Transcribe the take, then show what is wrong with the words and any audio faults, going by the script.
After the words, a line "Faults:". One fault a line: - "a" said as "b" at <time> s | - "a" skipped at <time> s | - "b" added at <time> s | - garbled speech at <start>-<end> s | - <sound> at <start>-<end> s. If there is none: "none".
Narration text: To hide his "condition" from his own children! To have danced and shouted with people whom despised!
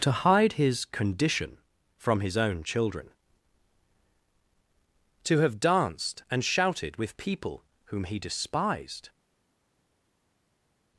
To hide his "condition" from his own children! To have danced and shouted with people whom he despised!
Faults:
- "he" added at 8.1 s